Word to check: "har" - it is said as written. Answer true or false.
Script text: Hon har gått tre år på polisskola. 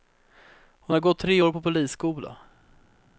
true